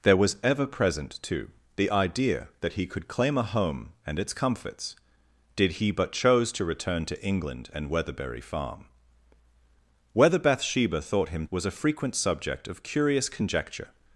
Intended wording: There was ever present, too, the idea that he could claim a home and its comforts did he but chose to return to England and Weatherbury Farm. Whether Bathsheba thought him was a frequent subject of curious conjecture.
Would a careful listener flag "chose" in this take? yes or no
no